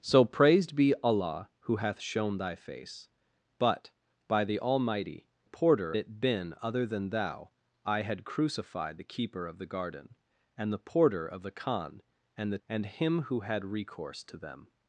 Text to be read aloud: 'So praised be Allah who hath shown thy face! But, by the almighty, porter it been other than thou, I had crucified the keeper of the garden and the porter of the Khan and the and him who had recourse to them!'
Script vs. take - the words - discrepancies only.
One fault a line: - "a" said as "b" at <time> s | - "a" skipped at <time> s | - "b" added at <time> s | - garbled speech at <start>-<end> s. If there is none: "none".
none